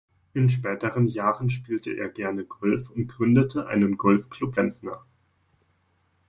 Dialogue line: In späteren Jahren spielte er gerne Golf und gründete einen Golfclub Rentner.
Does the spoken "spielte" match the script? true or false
true